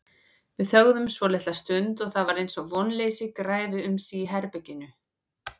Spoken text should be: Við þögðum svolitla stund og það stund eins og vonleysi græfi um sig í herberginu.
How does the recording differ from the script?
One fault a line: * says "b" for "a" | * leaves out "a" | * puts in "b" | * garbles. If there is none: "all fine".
* says "var" for "stund"